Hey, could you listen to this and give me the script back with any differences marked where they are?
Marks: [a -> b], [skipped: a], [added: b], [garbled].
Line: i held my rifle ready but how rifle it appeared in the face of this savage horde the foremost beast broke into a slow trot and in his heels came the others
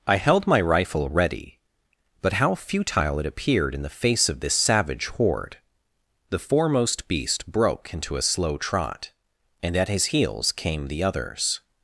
i held my rifle ready but how [rifle -> futile] it appeared in the face of this savage horde the foremost beast broke into a slow trot and [in -> at] his heels came the others